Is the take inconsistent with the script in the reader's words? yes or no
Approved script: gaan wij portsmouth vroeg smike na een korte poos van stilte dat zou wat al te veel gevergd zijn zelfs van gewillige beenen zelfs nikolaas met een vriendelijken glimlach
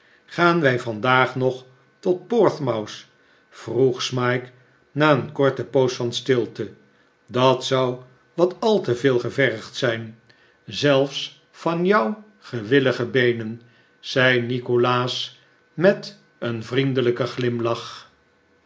yes